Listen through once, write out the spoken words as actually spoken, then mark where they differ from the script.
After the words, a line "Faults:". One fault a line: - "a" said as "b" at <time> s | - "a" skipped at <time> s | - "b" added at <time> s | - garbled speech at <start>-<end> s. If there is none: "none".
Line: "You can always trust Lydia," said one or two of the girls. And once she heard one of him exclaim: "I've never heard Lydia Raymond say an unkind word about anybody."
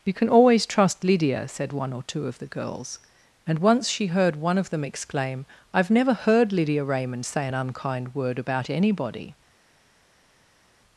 "You can always trust Lydia," said one or two of the girls. And once she heard one of them exclaim: "I've never heard Lydia Raymond say an unkind word about anybody."
Faults:
- "him" said as "them" at 4.7 s